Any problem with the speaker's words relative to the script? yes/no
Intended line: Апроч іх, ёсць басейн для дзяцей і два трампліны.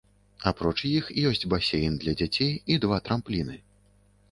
no